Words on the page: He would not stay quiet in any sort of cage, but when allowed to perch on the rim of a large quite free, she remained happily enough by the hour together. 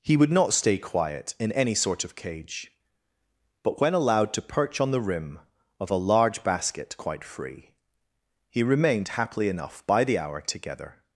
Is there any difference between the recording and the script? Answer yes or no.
yes